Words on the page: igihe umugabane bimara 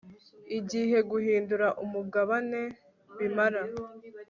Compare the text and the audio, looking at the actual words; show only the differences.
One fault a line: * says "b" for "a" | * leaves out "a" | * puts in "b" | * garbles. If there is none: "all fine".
* puts in "guhindura"